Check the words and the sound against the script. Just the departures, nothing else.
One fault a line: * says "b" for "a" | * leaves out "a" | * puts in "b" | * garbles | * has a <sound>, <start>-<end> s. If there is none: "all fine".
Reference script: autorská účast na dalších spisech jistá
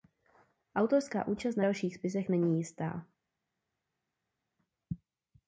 * puts in "není"